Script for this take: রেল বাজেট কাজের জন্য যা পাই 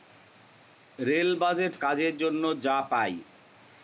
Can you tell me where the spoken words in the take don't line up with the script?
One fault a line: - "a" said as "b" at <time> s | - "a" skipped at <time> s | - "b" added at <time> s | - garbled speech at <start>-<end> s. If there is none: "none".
none